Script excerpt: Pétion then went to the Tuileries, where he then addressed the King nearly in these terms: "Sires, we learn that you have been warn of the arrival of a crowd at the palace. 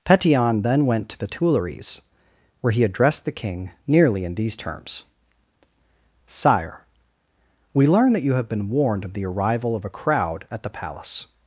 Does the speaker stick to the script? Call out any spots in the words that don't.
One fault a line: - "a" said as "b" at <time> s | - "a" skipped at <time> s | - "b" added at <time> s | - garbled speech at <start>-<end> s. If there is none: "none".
- "then" skipped at 2.8 s
- "Sires" said as "Sire" at 6.3 s
- "warn" said as "warned" at 8.7 s